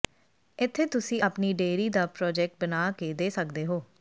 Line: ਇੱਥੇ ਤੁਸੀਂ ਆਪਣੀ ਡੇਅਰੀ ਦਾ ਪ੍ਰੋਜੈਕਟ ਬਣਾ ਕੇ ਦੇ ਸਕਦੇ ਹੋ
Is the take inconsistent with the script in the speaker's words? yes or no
no